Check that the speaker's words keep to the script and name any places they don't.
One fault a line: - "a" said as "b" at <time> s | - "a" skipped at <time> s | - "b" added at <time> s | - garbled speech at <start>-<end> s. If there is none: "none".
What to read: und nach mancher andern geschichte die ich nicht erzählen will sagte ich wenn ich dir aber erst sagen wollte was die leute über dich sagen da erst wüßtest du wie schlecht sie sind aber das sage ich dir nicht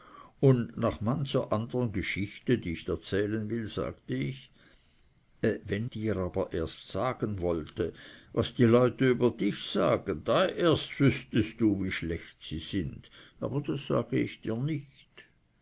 - "nicht" skipped at 2.9 s
- "ich" skipped at 5.9 s